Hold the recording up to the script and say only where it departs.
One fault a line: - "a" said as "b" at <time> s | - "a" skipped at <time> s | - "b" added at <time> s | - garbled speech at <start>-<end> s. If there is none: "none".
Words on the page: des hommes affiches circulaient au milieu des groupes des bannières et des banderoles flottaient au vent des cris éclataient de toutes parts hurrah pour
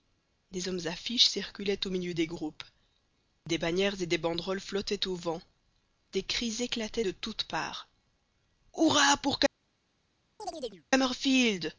none